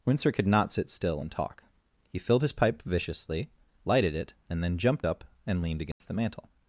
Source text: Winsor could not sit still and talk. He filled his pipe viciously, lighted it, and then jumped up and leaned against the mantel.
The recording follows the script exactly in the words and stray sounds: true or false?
false